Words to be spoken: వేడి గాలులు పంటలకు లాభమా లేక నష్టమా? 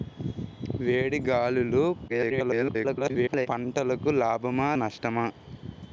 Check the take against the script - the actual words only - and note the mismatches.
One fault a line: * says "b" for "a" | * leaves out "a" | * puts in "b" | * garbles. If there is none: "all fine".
* garbles
* leaves out "లేక"